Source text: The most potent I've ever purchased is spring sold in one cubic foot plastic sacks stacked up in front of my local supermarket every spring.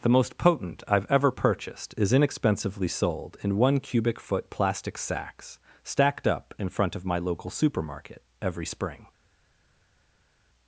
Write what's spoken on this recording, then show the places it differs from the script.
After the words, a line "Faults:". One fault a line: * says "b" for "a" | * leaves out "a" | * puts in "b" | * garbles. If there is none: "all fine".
The most potent I've ever purchased is inexpensively sold in one cubic foot plastic sacks stacked up in front of my local supermarket every spring.
Faults:
* says "inexpensively" for "spring"